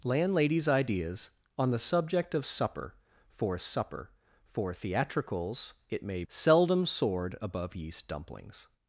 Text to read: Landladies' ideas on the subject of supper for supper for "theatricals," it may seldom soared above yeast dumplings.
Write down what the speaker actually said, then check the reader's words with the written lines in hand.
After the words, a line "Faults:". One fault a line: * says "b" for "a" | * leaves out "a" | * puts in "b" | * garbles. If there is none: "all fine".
Landladies' ideas on the subject of supper for supper for "theatricals," it may seldom soared above yeast dumplings.
Faults:
all fine